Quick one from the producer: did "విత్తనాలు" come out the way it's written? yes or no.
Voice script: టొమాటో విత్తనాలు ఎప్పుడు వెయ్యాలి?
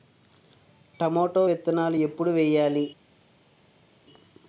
yes